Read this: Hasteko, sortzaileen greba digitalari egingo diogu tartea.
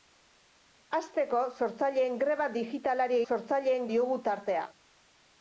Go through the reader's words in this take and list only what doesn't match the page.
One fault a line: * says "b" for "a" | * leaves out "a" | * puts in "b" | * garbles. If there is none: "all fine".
* says "sortzaileen" for "egingo"